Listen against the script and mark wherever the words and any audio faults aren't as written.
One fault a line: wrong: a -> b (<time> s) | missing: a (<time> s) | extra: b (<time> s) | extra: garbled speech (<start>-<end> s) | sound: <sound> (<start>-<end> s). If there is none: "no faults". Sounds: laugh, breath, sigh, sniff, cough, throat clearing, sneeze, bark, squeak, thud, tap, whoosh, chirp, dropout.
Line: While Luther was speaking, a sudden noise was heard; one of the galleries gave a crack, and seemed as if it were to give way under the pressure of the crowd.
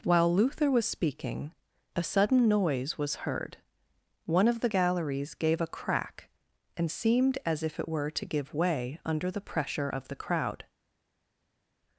no faults